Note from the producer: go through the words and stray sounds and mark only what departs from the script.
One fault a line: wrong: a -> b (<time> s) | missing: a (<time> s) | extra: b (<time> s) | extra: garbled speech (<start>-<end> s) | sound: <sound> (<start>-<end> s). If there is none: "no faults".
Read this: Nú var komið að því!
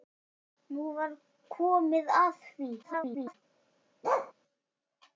extra: garbled speech (2.8-3.3 s)
sound: bark (4.0-4.3 s)